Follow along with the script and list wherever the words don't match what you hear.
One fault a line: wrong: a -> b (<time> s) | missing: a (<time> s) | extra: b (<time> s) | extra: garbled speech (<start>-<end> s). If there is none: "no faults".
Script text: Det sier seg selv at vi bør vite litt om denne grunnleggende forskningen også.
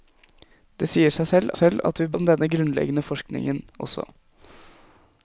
extra: selv (1.6 s)
missing: bør vite litt (2.1 s)